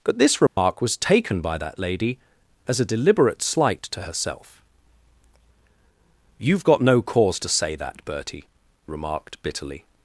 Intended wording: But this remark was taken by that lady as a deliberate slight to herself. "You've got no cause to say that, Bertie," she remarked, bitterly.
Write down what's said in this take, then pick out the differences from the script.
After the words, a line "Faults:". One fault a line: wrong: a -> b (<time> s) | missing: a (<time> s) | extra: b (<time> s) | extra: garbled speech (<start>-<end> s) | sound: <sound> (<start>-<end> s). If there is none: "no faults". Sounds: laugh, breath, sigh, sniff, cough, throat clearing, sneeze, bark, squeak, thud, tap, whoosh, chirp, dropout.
But this remark was taken by that lady as a deliberate slight to herself. "You've got no cause to say that, Bertie," remarked, bitterly.
Faults:
sound: dropout (0.5-0.6 s)
missing: she (8.4 s)